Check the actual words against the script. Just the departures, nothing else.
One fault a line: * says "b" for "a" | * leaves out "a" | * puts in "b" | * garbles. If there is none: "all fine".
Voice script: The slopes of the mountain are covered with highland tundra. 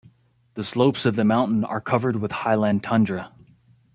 all fine